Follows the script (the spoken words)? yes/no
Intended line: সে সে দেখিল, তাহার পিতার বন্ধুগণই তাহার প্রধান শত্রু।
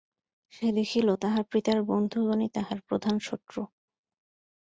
no